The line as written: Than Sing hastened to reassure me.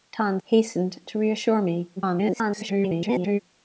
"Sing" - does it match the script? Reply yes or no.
no